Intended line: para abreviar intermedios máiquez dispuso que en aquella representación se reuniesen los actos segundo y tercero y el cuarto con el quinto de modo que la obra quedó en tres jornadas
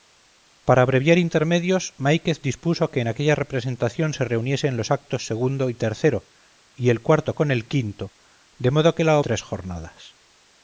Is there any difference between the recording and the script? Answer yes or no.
yes